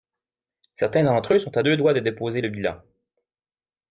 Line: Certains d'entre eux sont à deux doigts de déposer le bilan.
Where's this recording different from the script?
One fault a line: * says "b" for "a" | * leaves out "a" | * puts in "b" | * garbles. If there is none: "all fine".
all fine